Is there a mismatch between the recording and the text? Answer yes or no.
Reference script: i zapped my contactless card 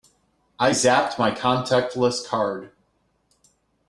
no